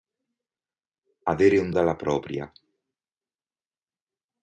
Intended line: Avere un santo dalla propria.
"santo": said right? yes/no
no